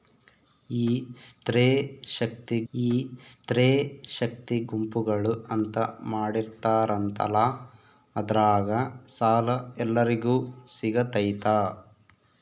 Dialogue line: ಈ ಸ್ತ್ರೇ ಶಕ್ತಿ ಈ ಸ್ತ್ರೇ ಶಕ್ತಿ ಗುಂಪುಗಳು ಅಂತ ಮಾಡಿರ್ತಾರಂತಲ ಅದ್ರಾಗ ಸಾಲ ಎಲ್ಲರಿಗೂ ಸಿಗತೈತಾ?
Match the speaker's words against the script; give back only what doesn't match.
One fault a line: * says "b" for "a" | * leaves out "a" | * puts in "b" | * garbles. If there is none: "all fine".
all fine